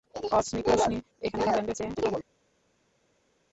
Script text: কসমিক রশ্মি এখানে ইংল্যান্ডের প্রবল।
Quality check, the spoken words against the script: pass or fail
fail